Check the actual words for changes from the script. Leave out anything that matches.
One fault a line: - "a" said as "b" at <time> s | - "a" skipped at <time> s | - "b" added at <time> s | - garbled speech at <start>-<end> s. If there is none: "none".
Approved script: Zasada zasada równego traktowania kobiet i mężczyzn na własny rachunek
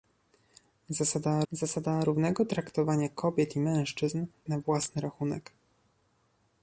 none